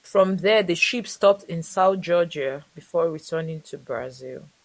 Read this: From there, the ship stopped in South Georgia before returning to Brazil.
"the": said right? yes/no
yes